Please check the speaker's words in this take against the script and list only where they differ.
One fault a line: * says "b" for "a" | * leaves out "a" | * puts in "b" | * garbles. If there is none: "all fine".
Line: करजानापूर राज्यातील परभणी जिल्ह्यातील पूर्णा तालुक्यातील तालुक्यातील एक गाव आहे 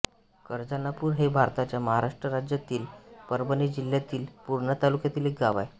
* puts in "हे भारताच्या महाराष्ट्र"
* leaves out "तालुक्यातील"